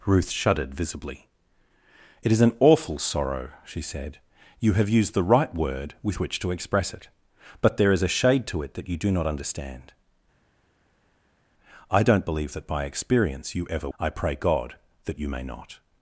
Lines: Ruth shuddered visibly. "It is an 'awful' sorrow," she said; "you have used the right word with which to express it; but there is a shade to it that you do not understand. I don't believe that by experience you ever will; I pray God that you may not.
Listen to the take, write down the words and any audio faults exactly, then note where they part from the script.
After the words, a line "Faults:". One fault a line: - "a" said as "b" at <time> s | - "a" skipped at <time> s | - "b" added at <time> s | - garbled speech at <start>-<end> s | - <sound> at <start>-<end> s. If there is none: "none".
Ruth shuddered visibly. "It is an 'awful' sorrow," she said; "you have used the right word with which to express it; but there is a shade to it that you do not understand. I don't believe that by experience you ever; I pray God that you may not.
Faults:
- "will" skipped at 13.9 s